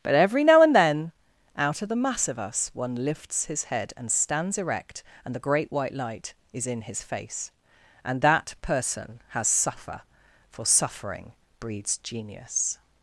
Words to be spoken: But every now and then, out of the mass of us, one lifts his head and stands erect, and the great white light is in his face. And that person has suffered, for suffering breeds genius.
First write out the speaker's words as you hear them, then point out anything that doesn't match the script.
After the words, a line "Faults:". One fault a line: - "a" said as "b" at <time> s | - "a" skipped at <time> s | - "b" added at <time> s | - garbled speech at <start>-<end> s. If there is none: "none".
But every now and then, out of the mass of us, one lifts his head and stands erect, and the great white light is in his face. And that person has suffer, for suffering breeds genius.
Faults:
- "suffered" said as "suffer" at 9.5 s